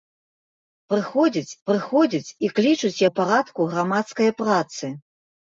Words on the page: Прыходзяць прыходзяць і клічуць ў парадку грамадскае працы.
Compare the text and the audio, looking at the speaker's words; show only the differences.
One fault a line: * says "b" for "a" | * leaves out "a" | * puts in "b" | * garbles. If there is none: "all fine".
all fine